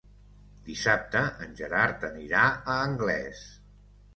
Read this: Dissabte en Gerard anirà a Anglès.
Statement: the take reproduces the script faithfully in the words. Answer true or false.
true